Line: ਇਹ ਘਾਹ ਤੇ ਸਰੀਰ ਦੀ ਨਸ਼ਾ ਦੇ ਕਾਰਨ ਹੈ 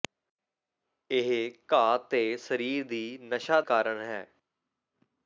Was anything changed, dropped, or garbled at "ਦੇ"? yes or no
yes